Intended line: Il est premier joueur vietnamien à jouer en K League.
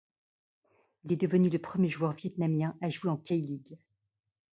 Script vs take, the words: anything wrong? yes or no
yes